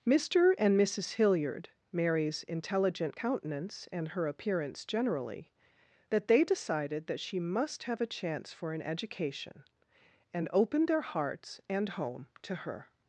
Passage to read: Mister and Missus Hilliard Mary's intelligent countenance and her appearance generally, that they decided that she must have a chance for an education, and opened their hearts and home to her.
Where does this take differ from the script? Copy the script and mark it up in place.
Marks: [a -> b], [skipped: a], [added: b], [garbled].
Mister and Missus Hilliard Mary's intelligent countenance and her appearance generally, that they decided that she must have a chance for an education, and opened their hearts and home to her.